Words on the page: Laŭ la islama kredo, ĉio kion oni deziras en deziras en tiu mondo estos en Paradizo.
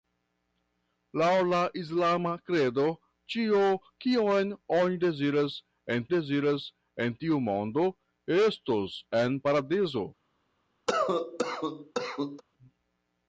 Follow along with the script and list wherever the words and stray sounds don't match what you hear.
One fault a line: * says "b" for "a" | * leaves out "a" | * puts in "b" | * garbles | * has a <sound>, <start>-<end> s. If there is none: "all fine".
* has a cough, 10.9-12.4 s